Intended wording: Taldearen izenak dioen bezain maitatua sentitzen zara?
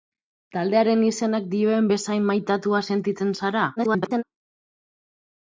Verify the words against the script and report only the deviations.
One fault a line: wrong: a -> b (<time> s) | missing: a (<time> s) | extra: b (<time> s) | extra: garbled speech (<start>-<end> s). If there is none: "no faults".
extra: garbled speech (3.8-4.2 s)